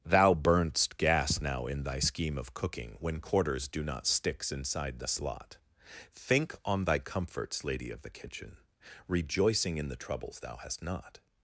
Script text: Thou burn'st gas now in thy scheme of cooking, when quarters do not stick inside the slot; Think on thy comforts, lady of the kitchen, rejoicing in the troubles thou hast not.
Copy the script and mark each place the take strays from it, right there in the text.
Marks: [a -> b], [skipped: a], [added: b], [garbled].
Thou burn'st gas now in thy scheme of cooking, when quarters do not [stick -> sticks] inside the slot; Think on thy comforts, lady of the kitchen, rejoicing in the troubles thou hast not.